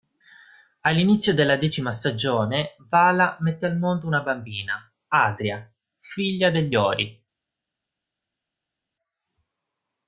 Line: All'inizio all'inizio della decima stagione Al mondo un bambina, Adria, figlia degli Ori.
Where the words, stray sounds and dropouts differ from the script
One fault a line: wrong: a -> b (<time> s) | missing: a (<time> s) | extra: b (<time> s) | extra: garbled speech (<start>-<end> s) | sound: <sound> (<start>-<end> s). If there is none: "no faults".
missing: all'inizio (1.4 s)
extra: Vala mette (2.9 s)
wrong: un -> una (4.1 s)